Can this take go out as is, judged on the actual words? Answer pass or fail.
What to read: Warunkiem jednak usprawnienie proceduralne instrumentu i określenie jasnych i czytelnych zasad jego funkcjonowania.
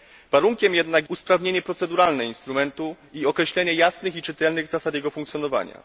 pass